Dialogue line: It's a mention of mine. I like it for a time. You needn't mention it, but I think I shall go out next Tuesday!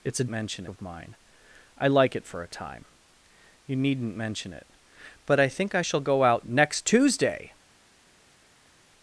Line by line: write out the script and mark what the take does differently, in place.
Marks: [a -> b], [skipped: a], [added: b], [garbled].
It's a mention of mine. I like it for a time. You needn't mention it, but I think I shall go out next Tuesday!